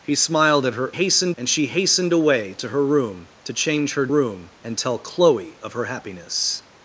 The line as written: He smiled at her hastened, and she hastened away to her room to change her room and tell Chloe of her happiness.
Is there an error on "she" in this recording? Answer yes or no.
no